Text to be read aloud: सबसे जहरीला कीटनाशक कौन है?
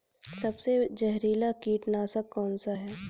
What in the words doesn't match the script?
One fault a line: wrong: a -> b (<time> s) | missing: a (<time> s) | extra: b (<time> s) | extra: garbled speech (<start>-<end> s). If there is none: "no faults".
extra: सा (2.6 s)